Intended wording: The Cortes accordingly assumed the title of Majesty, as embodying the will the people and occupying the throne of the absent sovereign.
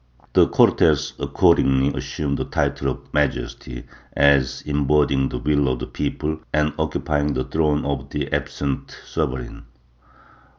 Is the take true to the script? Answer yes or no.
no